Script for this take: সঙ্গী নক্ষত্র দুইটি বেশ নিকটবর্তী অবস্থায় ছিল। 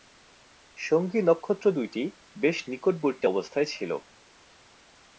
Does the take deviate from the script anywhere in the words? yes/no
no